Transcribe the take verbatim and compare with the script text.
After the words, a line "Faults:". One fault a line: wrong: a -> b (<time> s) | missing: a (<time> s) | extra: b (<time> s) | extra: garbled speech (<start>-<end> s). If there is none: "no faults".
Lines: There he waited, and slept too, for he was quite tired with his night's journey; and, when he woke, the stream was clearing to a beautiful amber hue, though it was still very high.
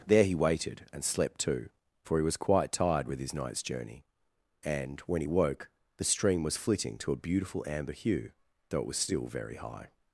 There he waited, and slept too, for he was quite tired with his night's journey; and, when he woke, the stream was flitting to a beautiful amber hue, though it was still very high.
Faults:
wrong: clearing -> flitting (6.6 s)